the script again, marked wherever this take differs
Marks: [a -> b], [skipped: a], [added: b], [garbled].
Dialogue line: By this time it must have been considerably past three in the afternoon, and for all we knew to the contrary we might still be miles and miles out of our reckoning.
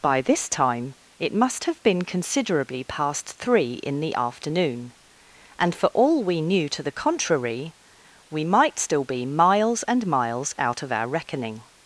By this time it must have been considerably past three in the afternoon, and for all we knew to the contrary we might still be miles and miles out of our reckoning.